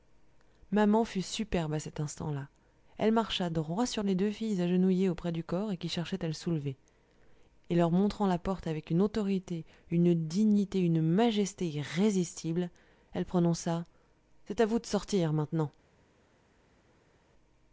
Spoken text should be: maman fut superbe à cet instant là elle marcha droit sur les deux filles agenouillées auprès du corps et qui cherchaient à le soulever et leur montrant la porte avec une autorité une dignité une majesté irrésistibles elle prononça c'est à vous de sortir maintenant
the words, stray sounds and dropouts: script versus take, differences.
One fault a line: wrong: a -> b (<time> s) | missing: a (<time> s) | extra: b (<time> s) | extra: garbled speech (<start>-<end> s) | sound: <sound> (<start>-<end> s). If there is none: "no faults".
no faults